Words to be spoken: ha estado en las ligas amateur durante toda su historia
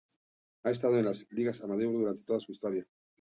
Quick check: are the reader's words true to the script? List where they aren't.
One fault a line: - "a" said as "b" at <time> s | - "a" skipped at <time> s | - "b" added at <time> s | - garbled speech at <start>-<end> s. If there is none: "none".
none